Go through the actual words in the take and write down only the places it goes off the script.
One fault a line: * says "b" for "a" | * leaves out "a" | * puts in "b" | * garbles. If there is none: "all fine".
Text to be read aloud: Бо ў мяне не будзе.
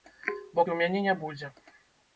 all fine